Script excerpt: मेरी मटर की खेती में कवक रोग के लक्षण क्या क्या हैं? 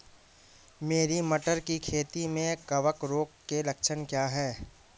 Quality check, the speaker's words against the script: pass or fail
fail